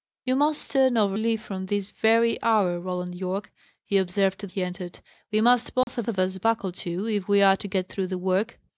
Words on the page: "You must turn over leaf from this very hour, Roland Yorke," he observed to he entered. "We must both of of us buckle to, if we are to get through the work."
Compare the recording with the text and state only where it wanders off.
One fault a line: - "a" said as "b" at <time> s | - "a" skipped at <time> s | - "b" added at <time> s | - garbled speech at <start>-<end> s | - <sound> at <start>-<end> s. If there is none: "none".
- dropout at 5.8-5.9 s